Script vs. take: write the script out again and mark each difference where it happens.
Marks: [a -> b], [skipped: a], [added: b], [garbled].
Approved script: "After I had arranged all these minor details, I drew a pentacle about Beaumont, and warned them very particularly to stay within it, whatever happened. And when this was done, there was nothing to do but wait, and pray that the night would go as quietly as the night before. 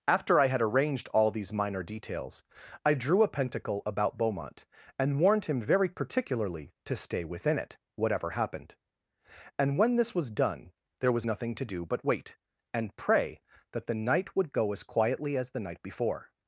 "After I had arranged all these minor details, I drew a pentacle about Beaumont, and warned [them -> him] very particularly to stay within it, whatever happened. And when this was done, there was nothing to do but wait, and pray that the night would go as quietly as the night before.